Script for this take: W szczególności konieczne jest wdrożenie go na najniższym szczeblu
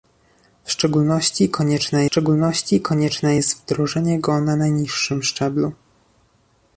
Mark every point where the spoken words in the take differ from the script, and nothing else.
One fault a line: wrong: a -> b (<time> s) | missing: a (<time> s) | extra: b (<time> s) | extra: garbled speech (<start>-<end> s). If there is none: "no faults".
extra: szczególności konieczne (2.0 s)